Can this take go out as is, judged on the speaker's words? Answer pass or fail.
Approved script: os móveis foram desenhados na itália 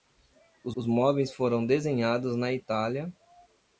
fail